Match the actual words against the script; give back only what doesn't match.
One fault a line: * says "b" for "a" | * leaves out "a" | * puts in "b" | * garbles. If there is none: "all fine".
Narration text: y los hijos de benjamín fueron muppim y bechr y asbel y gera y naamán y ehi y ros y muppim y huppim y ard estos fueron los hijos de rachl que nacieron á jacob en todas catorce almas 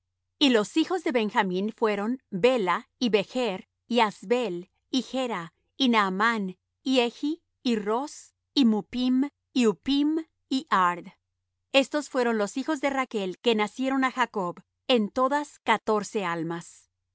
* says "bela" for "muppim"